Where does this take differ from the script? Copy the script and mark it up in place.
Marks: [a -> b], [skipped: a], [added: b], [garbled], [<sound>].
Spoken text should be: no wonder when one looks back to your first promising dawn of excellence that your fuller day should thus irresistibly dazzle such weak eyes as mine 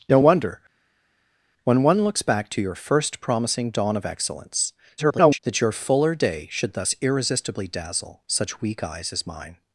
no wonder when one looks back to your first promising dawn of excellence [garbled] that your fuller day should thus irresistibly dazzle such weak eyes as mine